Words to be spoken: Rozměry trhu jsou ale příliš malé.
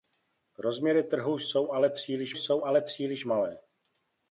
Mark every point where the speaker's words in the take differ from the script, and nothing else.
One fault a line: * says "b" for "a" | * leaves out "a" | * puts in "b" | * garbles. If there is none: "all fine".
* puts in "jsou ale příliš"